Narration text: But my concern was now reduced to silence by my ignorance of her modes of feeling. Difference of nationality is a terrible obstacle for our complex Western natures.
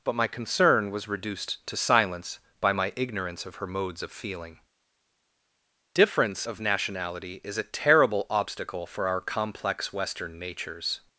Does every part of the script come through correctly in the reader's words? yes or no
no